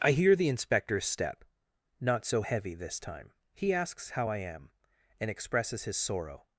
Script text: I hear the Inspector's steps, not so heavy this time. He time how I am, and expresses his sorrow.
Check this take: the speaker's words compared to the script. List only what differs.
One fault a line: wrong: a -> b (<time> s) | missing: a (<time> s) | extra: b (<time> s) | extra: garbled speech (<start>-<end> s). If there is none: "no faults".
wrong: steps -> step (1.1 s)
wrong: time -> asks (3.7 s)